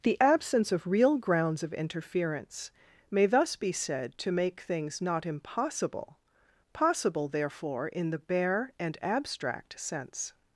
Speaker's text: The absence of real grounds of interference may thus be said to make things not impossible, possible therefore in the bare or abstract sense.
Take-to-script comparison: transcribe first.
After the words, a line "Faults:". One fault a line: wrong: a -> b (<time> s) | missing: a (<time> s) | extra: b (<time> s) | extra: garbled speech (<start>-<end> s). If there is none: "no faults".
The absence of real grounds of interference may thus be said to make things not impossible, possible therefore in the bare and abstract sense.
Faults:
wrong: or -> and (8.8 s)